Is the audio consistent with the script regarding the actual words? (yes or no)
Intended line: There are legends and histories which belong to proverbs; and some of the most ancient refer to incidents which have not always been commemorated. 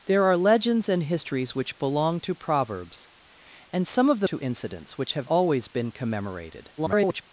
no